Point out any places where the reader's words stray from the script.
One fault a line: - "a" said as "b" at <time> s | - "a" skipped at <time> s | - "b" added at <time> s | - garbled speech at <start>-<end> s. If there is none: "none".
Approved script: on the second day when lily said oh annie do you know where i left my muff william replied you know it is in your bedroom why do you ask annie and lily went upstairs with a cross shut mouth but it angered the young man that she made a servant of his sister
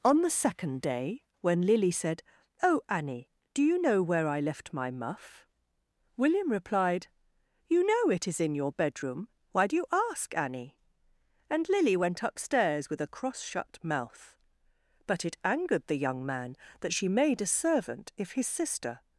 - "of" said as "if" at 18.2 s